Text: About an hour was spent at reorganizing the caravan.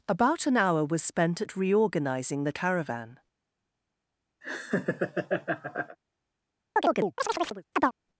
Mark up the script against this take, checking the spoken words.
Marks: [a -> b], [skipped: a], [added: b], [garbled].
About an hour was spent at reorganizing the caravan.